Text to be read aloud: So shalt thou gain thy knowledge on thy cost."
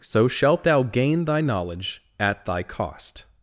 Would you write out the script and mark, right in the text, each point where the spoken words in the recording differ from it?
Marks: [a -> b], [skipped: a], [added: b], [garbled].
So shalt thou gain thy knowledge [on -> at] thy cost."